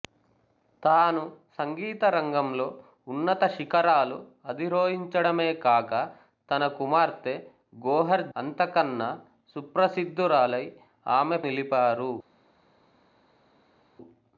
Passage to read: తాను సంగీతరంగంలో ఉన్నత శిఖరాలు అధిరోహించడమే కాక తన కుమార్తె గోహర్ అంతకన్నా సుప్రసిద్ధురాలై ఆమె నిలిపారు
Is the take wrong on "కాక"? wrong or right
right